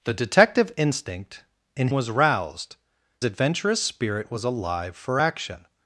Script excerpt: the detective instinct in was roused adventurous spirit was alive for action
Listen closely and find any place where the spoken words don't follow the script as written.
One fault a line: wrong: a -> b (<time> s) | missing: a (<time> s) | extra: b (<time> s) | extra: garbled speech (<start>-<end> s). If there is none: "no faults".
no faults